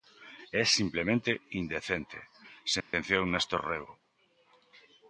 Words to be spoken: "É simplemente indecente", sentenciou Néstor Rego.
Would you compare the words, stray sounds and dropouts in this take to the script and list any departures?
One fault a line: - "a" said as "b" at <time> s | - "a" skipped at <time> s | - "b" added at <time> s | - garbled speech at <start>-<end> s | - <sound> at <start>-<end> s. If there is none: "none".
- dropout at 2.8-2.9 s